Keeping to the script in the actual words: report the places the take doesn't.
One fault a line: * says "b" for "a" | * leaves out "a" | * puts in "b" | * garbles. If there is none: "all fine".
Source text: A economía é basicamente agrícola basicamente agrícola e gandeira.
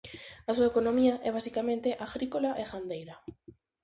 * puts in "súa"
* leaves out "basicamente agrícola"